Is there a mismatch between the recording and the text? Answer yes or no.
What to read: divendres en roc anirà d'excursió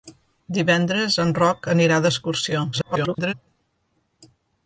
yes